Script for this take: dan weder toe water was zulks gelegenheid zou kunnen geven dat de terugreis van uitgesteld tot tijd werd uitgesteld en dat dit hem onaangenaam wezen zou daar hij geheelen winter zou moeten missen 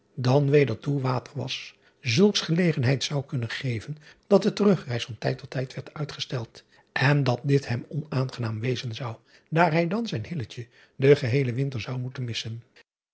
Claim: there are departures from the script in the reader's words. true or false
true